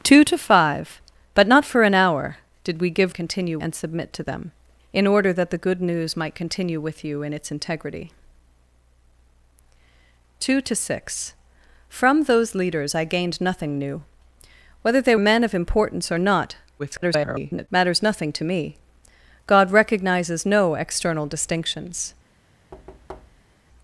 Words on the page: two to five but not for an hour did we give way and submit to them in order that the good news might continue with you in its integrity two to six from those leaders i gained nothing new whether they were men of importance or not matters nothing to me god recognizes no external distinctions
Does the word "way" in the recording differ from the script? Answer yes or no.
yes